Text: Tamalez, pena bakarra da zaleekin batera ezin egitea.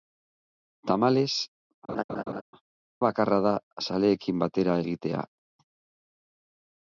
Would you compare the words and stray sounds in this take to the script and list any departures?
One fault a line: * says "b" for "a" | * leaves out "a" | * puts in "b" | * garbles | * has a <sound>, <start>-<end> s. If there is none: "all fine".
* leaves out "pena"
* has a laugh, 1.9-2.4 s
* leaves out "ezin"